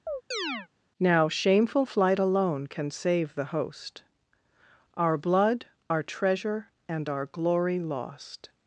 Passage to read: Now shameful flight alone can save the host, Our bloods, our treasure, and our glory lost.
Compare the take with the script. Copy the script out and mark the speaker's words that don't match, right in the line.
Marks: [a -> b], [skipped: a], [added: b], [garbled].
Now shameful flight alone can save the host, Our [bloods, -> blood] our treasure, and our glory lost.